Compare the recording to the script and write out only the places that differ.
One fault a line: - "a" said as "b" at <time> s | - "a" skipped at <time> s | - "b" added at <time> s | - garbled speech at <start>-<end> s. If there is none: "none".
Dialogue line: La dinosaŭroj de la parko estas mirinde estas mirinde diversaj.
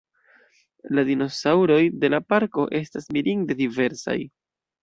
- "estas mirinde" skipped at 3.6 s